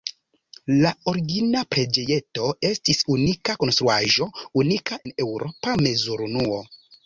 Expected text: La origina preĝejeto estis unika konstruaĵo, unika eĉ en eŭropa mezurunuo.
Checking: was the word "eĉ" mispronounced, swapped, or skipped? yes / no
yes